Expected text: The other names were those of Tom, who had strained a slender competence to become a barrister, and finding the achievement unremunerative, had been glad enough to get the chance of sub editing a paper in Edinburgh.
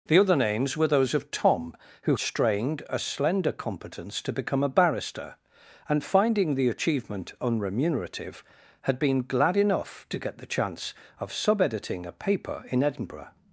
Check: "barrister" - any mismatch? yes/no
no